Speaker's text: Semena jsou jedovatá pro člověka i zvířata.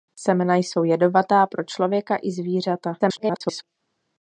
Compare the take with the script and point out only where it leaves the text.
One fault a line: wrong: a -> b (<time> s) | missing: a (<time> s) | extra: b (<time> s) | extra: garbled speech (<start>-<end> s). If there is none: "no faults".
extra: garbled speech (3.0-3.6 s)